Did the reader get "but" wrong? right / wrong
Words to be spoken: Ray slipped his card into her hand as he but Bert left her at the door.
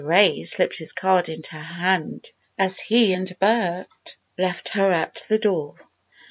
wrong